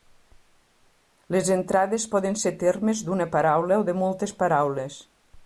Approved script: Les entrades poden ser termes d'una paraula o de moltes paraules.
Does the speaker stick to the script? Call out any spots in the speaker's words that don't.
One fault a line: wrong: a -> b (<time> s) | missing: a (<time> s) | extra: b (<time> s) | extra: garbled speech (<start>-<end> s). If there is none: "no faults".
no faults